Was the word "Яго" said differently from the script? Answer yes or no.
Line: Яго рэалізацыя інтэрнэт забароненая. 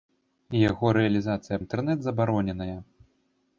no